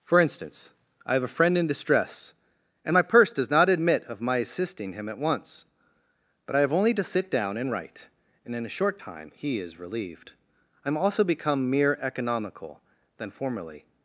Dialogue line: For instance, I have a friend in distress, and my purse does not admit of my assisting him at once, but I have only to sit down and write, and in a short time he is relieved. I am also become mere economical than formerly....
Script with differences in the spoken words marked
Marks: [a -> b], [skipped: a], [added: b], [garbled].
For instance, I have a friend in distress, and my purse does not admit of my assisting him at once, but I have only to sit down and write, and in a short time he is relieved. I am also become mere economical than formerly....